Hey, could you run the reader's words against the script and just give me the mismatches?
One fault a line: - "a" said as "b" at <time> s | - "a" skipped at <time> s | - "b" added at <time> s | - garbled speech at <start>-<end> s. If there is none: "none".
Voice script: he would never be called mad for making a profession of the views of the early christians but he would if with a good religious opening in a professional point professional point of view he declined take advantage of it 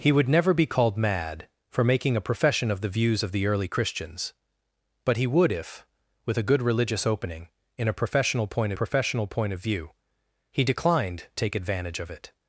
none